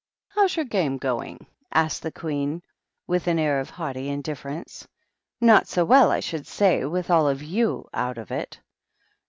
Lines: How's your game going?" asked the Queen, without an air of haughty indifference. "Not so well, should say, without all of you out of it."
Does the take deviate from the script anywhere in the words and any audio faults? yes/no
yes